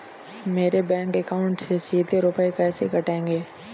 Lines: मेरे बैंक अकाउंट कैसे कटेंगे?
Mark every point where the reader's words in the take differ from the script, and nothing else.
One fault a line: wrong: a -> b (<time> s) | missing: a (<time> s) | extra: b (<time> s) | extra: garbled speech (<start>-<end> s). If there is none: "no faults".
extra: से सीधे रुपए (1.6 s)